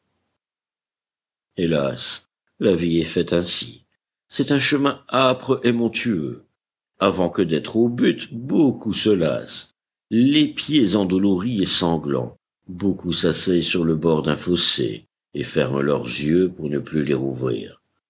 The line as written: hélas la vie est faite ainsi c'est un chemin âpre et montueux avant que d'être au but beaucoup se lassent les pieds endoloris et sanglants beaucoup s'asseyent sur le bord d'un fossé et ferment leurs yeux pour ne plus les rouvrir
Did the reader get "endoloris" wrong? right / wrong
right